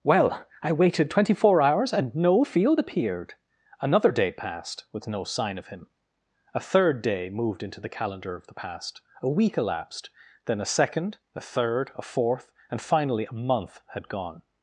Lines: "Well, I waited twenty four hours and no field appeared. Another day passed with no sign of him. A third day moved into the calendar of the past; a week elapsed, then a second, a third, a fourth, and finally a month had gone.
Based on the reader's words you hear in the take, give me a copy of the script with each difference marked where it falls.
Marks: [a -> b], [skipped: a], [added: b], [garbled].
"Well, I waited twenty four hours and no field appeared. Another day passed with no sign of him. A third day moved into the calendar of the past; a week elapsed, then a second, a third, a fourth, and finally a month had gone.